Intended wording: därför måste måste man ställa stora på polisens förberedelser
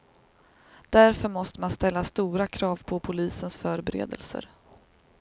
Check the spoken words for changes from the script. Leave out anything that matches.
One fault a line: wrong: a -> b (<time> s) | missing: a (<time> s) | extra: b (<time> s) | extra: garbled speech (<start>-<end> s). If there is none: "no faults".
missing: måste (1.6 s)
extra: krav (2.5 s)